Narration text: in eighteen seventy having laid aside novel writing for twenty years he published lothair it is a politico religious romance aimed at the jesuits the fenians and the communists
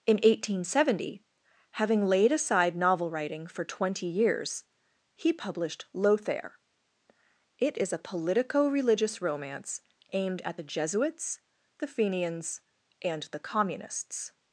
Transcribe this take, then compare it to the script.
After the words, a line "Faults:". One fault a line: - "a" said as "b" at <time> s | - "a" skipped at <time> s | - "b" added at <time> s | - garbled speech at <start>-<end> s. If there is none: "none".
in eighteen seventy having laid aside novel writing for twenty years he published lothair it is a politico religious romance aimed at the jesuits the fenians and the communists
Faults:
none